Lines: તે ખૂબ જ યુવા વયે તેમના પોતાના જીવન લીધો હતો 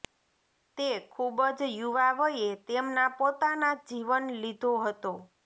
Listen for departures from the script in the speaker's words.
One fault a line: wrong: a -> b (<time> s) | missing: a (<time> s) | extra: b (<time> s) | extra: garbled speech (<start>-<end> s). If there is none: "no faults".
no faults